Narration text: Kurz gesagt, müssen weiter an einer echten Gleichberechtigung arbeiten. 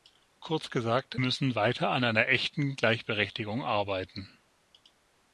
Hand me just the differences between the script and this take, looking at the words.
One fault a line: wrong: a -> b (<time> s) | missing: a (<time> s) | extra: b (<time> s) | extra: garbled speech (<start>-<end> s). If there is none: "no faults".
no faults